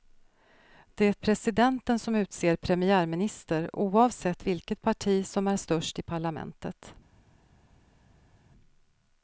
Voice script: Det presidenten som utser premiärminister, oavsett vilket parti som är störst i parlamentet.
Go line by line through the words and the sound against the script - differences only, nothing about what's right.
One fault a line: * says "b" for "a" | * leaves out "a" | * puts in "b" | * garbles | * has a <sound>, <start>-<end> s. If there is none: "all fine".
all fine